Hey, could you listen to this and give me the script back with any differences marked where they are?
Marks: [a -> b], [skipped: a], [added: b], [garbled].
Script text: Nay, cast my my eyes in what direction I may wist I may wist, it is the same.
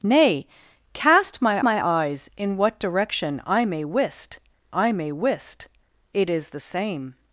Nay, cast my my eyes in what direction I may wist I may wist, it is the same.